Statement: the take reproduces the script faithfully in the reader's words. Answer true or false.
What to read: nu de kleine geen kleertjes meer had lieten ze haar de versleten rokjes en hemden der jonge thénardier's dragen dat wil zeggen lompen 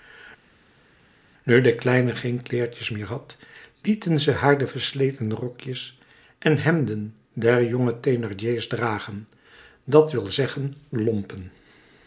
true